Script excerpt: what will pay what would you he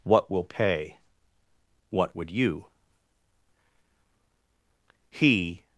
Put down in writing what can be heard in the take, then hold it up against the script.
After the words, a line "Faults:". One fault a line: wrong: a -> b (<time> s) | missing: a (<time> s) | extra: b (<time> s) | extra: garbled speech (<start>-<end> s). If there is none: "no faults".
what will pay what would you he
Faults:
no faults